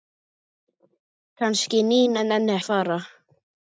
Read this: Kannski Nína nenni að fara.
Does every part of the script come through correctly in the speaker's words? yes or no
yes